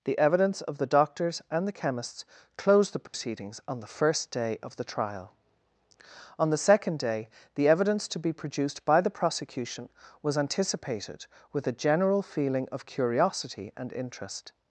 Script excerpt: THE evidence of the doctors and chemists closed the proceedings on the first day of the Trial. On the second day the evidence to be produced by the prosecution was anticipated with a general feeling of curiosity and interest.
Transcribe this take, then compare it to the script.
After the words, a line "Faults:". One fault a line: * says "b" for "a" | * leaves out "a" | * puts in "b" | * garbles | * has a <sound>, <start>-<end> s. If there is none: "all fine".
THE evidence of the doctors and the chemists closed the proceedings on the first day of the Trial. On the second day the evidence to be produced by the prosecution was anticipated with a general feeling of curiosity and interest.
Faults:
* puts in "the"
* has a dropout, 3.1-3.1 s